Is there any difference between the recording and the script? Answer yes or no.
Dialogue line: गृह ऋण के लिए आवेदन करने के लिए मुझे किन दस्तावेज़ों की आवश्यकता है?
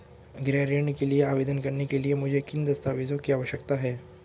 no